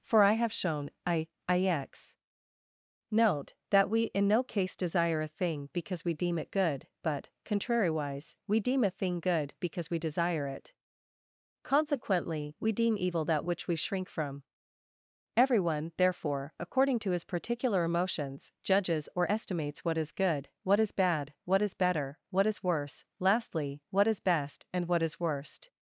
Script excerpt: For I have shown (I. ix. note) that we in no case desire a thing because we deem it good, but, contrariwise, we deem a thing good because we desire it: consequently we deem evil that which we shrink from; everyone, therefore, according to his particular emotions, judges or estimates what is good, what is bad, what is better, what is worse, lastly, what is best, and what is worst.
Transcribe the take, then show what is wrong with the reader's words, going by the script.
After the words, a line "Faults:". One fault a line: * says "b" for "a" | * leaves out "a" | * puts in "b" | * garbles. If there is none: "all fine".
For I have shown (I. ix. note) that we in no case desire a thing because we deem it good, but, contrariwise, we deem a thing good because we desire it: consequently we deem evil that which we shrink from; everyone, therefore, according to his particular emotions, judges or estimates what is good, what is bad, what is better, what is worse, lastly, what is best, and what is worst.
Faults:
all fine